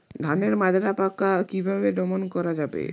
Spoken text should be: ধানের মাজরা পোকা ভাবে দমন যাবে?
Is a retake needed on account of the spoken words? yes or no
yes